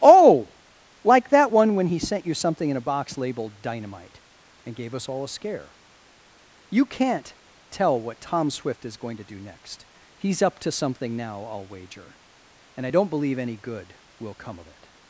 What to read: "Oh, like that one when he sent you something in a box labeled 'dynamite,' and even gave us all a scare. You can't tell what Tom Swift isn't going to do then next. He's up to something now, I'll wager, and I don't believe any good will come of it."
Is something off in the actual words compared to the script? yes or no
yes